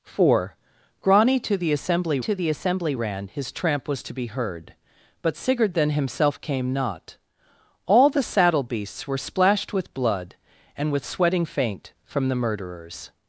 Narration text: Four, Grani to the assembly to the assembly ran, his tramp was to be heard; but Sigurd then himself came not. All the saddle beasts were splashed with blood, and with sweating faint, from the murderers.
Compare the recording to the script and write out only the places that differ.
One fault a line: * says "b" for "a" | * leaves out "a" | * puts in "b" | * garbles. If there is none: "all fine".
all fine